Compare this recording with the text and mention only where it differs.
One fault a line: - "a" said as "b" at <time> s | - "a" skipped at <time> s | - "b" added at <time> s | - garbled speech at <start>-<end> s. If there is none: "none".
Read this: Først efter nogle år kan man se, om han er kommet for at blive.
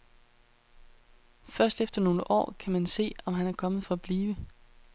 none